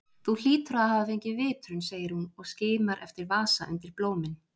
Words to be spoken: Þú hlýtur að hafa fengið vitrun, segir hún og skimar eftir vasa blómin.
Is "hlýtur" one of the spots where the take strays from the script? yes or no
no